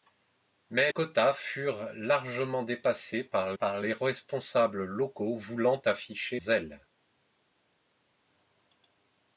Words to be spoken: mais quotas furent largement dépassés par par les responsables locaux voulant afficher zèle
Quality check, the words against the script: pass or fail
pass